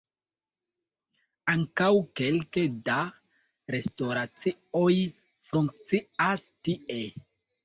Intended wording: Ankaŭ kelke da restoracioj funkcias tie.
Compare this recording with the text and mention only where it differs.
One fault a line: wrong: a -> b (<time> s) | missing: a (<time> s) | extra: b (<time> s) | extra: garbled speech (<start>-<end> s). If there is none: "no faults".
no faults